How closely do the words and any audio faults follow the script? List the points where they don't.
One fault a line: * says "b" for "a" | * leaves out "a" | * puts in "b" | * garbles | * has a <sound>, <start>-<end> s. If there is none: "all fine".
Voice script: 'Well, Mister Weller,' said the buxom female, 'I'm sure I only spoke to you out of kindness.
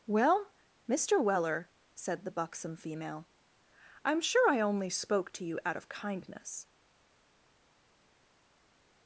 all fine